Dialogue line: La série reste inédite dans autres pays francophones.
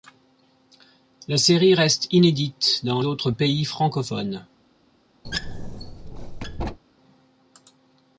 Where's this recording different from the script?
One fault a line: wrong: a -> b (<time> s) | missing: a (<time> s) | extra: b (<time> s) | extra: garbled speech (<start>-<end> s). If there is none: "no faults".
no faults